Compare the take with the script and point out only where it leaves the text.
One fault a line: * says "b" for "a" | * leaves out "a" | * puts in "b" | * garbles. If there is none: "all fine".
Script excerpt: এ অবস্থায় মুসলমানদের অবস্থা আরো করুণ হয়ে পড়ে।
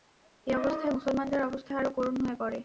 all fine